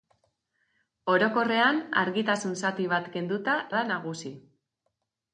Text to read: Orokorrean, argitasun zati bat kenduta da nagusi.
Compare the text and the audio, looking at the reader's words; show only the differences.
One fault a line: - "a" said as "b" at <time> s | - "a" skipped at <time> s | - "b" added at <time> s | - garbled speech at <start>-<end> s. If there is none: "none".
none